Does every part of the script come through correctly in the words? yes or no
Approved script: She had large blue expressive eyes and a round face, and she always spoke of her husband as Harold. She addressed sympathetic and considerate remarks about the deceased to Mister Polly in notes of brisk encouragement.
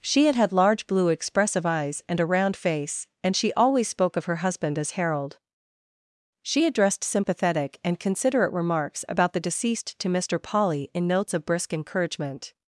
no